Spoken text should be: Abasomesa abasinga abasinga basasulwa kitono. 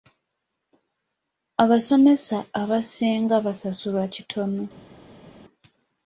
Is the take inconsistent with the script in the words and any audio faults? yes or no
yes